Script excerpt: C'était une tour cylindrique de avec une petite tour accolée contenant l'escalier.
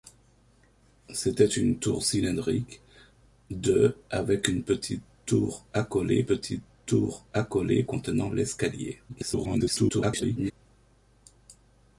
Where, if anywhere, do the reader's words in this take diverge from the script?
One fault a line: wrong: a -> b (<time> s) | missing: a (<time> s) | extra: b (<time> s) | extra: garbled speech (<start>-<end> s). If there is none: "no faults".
extra: petite tour accolée (6.2 s)
extra: garbled speech (9.1-10.5 s)